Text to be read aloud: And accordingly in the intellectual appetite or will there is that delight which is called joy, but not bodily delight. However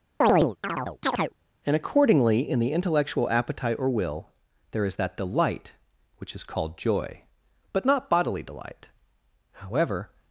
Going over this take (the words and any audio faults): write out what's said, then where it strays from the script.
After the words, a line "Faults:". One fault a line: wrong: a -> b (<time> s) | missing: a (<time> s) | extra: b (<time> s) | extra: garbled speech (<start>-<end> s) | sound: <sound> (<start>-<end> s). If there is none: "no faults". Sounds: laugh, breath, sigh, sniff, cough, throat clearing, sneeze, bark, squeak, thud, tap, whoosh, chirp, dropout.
And accordingly in the intellectual appetite or will there is that delight which is called joy, but not bodily delight. However
Faults:
sound: chirp (0.2-1.3 s)